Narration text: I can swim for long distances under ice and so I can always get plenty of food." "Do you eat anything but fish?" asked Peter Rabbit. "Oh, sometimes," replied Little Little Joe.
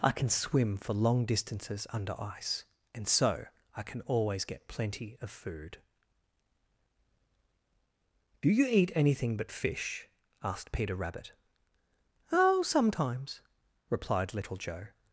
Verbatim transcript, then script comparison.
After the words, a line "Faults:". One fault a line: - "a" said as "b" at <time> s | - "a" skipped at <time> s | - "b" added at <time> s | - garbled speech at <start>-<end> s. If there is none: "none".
I can swim for long distances under ice and so I can always get plenty of food." "Do you eat anything but fish?" asked Peter Rabbit. "Oh, sometimes," replied Little Joe.
Faults:
- "Little" skipped at 14.6 s